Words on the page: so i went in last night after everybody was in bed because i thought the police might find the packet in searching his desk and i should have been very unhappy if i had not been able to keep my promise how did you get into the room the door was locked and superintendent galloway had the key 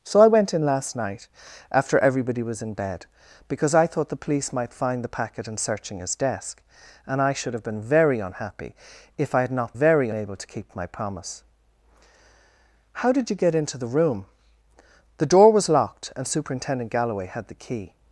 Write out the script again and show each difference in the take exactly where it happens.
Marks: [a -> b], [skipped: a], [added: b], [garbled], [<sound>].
so i went in last night after everybody was in bed because i thought the police might find the packet in searching his desk and i should have been very unhappy if i had not [been -> very] able to keep my promise how did you get into the room the door was locked and superintendent galloway had the key